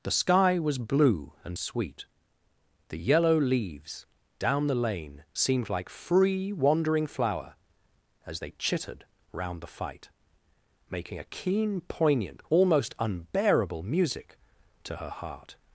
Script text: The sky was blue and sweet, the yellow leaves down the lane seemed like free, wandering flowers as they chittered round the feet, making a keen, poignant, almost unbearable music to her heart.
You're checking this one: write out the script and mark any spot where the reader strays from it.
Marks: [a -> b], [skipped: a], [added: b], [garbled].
The sky was blue and sweet, the yellow leaves down the lane seemed like free, wandering [flowers -> flower] as they chittered round the [feet, -> fight] making a keen, poignant, almost unbearable music to her heart.